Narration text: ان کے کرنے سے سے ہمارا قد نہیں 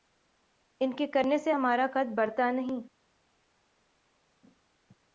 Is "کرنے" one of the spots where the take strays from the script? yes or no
no